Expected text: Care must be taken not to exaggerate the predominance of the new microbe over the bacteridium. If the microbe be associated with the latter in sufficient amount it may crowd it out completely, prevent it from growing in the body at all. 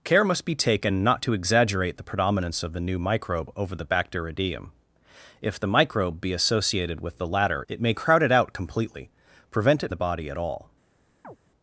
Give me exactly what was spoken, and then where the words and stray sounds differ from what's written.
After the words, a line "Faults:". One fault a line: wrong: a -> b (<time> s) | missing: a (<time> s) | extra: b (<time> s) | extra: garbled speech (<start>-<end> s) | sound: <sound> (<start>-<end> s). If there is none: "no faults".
Care must be taken not to exaggerate the predominance of the new microbe over the bacteridium. If the microbe be associated with the latter it may crowd it out completely, prevent it the body at all.
Faults:
missing: in sufficient amount (7.6 s)
missing: from growing in (9.9 s)
sound: chirp (11.2-11.4 s)